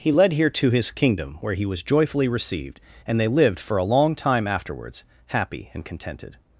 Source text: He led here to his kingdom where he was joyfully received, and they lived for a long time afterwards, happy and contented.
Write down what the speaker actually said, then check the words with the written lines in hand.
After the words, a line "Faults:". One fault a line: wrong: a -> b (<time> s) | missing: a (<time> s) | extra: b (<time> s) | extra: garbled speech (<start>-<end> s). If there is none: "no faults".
He led here to his kingdom where he was joyfully received, and they lived for a long time afterwards, happy and contented.
Faults:
no faults